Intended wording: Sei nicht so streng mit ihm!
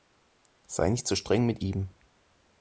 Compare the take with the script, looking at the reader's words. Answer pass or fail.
pass